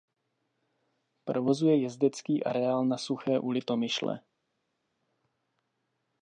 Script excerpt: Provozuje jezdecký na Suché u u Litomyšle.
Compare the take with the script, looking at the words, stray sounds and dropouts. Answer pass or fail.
fail